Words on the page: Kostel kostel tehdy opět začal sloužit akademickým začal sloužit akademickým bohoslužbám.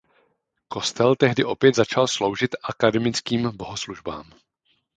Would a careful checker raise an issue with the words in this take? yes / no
yes